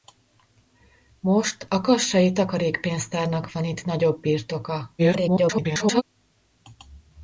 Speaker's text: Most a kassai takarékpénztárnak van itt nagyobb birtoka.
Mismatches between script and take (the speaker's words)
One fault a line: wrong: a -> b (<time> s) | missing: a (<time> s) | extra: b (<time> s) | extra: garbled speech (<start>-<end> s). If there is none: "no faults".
extra: garbled speech (5.0-6.0 s)